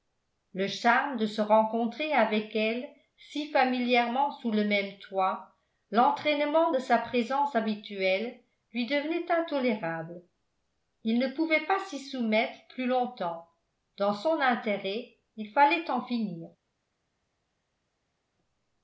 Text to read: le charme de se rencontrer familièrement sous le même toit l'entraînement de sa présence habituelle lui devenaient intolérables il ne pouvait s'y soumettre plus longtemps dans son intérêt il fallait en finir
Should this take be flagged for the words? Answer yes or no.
yes